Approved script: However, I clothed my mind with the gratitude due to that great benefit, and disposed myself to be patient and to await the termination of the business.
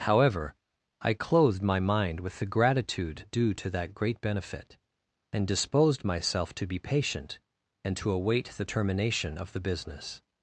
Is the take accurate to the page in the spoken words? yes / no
yes